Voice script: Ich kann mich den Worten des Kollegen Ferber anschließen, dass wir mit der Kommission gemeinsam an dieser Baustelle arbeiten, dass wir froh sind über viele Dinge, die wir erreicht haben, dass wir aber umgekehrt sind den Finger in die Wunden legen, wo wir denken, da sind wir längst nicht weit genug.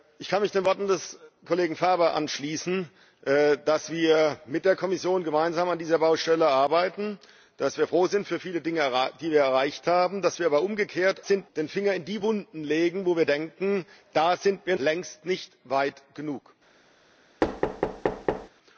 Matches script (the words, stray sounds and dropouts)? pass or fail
fail